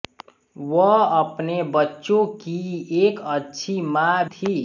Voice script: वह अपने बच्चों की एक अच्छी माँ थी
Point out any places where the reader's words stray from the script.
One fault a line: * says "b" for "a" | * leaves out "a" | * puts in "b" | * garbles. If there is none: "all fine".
all fine